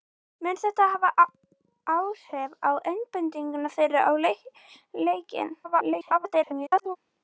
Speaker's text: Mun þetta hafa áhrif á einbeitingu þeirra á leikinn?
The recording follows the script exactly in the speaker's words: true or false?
false